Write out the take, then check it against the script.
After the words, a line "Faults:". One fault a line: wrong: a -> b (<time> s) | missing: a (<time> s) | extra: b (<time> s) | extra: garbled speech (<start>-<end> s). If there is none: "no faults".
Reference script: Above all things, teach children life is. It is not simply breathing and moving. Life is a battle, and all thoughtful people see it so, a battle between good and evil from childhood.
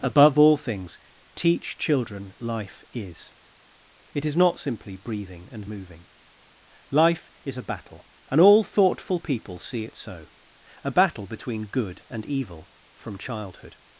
Above all things, teach children life is. It is not simply breathing and moving. Life is a battle, and all thoughtful people see it so, a battle between good and evil from childhood.
Faults:
no faults